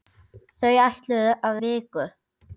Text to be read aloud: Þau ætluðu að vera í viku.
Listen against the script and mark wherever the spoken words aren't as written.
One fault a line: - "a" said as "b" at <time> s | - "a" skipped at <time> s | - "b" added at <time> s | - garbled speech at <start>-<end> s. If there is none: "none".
- "vera" skipped at 1.6 s